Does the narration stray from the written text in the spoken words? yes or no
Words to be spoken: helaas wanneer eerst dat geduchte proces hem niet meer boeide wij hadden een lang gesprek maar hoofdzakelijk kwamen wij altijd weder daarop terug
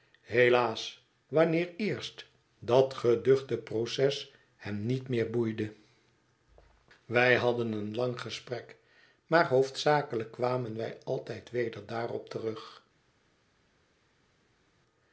no